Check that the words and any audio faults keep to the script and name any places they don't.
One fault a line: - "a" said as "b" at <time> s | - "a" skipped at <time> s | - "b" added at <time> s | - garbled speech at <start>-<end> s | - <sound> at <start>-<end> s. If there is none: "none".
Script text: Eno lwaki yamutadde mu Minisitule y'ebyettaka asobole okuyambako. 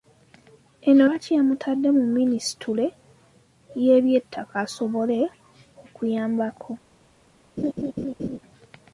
- laugh at 7.6-8.4 s